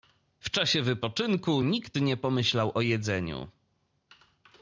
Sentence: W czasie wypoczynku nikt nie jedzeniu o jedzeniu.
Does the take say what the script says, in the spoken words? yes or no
no